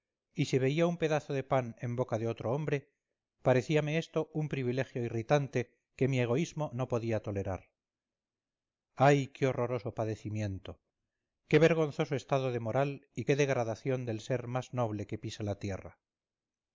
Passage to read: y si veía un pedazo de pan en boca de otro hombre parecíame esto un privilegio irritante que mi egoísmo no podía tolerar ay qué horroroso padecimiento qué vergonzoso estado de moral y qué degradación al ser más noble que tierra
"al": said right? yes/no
no